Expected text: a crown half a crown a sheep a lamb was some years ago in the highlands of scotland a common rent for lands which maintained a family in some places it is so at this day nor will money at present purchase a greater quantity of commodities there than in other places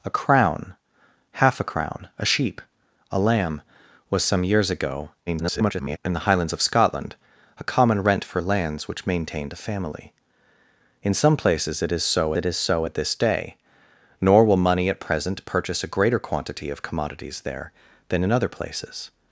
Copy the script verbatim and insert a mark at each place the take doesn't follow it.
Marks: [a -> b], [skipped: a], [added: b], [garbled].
a crown half a crown a sheep a lamb was some years ago [garbled] in the highlands of scotland a common rent for lands which maintained a family in some places it is so [added: it is so] at this day nor will money at present purchase a greater quantity of commodities there than in other places